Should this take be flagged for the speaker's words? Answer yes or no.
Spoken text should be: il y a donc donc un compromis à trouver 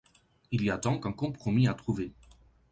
yes